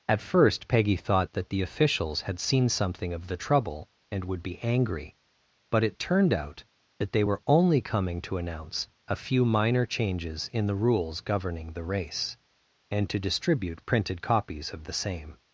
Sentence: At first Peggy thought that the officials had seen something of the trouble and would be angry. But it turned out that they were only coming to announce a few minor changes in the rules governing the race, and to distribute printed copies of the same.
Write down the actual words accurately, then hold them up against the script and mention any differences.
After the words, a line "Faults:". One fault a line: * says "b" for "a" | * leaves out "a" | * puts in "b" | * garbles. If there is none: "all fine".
At first Peggy thought that the officials had seen something of the trouble and would be angry. But it turned out that they were only coming to announce a few minor changes in the rules governing the race, and to distribute printed copies of the same.
Faults:
all fine